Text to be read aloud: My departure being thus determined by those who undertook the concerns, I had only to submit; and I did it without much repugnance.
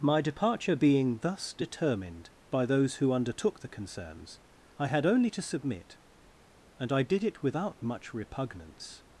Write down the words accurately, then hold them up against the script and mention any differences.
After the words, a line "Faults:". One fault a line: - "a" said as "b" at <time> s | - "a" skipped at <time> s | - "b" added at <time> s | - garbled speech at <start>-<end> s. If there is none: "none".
My departure being thus determined by those who undertook the concerns, I had only to submit; and I did it without much repugnance.
Faults:
none